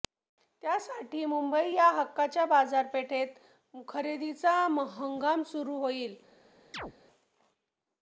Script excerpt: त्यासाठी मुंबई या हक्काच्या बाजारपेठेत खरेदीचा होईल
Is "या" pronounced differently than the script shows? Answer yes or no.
no